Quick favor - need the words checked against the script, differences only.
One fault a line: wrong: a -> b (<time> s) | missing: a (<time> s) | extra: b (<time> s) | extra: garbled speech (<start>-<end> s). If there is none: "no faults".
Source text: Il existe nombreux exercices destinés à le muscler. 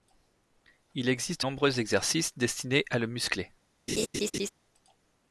no faults